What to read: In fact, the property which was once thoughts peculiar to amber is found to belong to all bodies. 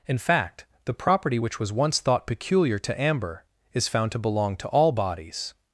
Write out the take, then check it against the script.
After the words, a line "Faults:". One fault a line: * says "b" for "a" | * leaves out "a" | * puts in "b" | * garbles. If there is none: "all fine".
In fact, the property which was once thought peculiar to amber is found to belong to all bodies.
Faults:
* says "thought" for "thoughts"